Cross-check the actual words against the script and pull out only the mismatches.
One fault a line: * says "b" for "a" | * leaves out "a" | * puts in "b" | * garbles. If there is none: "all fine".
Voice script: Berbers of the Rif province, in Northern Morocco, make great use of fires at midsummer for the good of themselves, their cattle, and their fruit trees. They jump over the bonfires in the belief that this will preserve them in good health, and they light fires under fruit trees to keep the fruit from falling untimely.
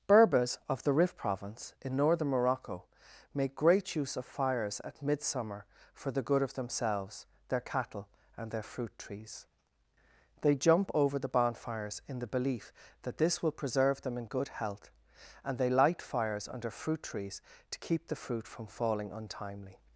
all fine